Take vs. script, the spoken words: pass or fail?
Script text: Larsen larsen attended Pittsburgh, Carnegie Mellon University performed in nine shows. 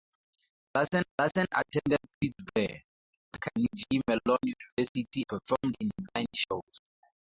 pass